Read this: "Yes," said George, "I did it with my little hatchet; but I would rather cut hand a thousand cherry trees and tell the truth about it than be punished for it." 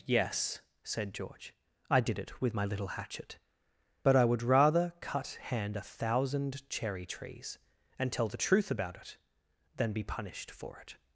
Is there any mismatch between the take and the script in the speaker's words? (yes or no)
no